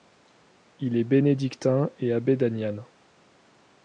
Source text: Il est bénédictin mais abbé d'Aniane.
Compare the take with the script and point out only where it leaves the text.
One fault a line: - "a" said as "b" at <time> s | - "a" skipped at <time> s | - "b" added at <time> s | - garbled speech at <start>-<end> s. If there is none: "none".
- "mais" said as "et" at 2.0 s